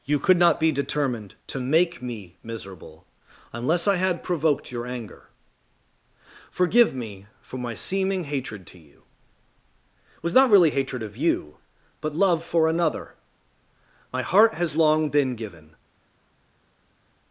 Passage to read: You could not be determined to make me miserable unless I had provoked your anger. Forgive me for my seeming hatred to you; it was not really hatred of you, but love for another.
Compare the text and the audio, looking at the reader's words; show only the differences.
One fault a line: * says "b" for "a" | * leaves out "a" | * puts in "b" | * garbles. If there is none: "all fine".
* puts in "My heart has long been given"